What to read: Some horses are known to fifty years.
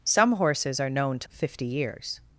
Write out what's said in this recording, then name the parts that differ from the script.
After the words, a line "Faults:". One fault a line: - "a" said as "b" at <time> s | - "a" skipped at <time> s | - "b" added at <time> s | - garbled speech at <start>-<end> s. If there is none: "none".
Some horses are known to fifty years.
Faults:
none